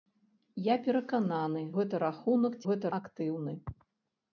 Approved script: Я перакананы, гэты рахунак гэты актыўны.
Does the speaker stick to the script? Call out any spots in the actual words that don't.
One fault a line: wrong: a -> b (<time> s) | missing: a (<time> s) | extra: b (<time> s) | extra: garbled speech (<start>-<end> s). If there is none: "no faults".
no faults